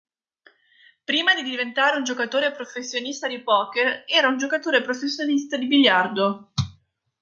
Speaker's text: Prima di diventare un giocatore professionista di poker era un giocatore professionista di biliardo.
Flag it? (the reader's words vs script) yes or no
no